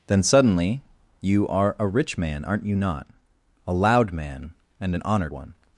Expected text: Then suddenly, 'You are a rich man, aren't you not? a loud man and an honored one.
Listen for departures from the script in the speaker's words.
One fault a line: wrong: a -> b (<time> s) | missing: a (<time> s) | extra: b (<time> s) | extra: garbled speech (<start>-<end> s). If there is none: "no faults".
no faults